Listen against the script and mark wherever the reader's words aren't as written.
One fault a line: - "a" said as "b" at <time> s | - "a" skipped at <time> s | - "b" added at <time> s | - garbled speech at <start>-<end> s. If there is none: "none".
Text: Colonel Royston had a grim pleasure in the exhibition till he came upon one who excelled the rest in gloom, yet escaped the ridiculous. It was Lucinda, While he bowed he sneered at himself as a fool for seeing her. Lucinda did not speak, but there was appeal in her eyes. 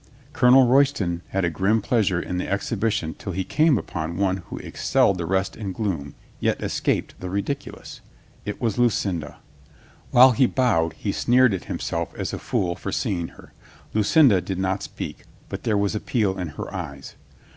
none